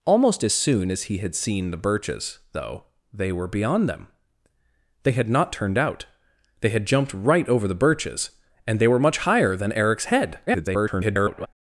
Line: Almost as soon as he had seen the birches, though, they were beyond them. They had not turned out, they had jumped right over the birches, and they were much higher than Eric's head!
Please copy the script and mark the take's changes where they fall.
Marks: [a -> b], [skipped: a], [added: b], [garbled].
Almost as soon as he had seen the birches, though, they were beyond them. They had not turned out, they had jumped right over the birches, and they were much higher than Eric's head! [garbled]